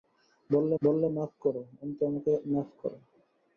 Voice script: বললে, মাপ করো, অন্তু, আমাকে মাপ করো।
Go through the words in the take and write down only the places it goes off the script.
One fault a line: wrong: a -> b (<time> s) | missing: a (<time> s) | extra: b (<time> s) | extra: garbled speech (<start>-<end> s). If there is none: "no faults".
extra: বললে (0.8 s)